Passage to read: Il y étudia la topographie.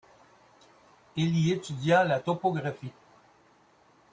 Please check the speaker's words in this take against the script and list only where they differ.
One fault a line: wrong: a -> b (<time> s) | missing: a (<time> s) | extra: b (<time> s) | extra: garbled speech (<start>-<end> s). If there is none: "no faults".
no faults